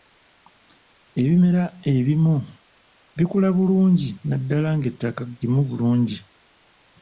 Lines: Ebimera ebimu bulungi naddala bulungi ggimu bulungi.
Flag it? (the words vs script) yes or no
yes